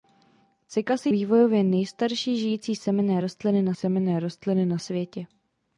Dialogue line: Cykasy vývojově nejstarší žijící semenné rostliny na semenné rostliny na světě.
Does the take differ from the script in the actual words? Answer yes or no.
no